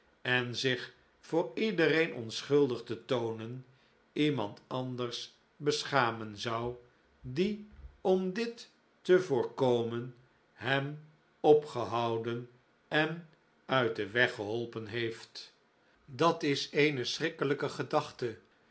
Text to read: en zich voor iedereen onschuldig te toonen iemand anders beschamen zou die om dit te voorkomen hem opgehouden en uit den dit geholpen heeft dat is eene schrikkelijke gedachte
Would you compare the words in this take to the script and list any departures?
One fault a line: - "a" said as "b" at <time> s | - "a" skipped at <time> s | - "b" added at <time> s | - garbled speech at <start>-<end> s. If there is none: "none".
- "dit" said as "weg" at 14.1 s